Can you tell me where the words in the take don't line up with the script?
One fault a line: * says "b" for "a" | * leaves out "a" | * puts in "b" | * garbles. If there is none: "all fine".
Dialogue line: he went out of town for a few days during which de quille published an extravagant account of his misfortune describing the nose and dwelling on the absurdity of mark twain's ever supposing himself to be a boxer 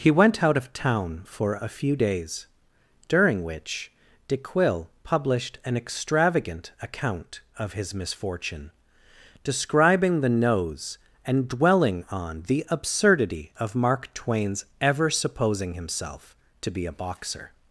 all fine